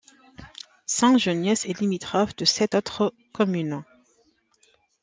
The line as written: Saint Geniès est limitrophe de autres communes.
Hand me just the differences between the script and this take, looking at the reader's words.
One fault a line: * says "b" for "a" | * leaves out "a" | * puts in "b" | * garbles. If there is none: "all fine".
* puts in "sept"